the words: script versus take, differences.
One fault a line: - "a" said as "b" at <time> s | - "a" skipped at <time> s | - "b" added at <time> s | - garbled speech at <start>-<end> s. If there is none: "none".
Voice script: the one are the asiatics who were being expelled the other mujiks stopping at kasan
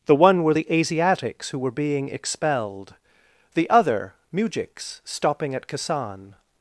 - "are" said as "were" at 0.4 s